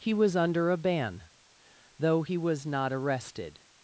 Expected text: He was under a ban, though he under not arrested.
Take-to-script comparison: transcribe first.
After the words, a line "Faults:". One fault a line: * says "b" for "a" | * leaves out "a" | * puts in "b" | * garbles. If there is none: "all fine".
He was under a ban, though he was not arrested.
Faults:
* says "was" for "under"